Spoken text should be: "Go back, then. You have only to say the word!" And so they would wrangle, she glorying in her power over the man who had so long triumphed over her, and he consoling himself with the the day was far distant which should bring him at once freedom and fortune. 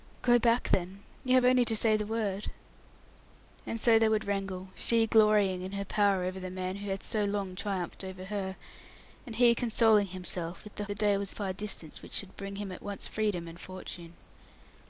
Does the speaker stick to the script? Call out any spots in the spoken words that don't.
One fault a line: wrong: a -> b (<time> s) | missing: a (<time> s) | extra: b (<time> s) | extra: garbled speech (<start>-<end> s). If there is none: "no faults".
no faults